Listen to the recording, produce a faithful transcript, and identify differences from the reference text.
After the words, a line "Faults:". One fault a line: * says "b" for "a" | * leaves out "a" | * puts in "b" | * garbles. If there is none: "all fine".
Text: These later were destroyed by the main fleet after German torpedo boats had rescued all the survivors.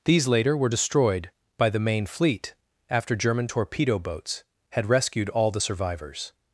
These later were destroyed by the main fleet after German torpedo boats had rescued all the survivors.
Faults:
all fine